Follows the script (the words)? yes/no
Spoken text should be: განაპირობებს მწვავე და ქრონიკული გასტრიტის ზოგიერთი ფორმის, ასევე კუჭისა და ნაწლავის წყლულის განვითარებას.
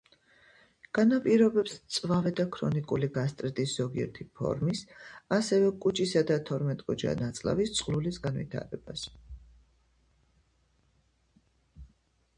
no